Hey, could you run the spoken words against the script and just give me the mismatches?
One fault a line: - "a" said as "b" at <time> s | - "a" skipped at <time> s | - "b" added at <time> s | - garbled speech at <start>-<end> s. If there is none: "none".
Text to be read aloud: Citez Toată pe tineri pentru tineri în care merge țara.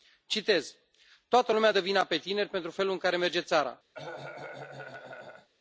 - "lumea dă vina" added at 1.5 s
- "tineri" said as "felul" at 2.7 s